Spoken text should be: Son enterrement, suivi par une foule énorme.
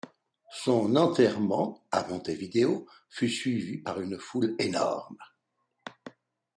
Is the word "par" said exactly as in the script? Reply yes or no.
yes